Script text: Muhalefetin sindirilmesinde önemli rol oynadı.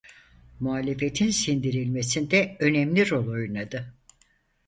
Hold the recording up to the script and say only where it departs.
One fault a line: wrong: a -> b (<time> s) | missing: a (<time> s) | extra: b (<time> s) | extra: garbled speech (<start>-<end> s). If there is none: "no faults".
no faults